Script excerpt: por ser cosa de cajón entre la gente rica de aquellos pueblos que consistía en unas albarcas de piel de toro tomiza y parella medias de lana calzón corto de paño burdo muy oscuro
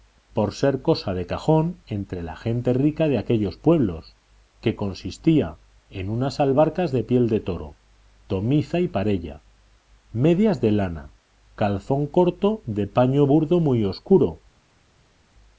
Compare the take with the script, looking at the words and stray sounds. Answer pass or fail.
pass